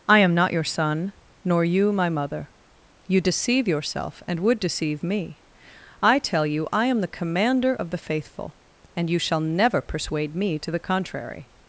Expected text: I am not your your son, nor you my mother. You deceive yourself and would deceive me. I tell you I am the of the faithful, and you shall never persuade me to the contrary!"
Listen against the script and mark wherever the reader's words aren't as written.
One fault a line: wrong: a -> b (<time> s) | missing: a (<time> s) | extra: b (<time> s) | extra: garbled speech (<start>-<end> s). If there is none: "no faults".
missing: your (0.6 s)
extra: commander (7.1 s)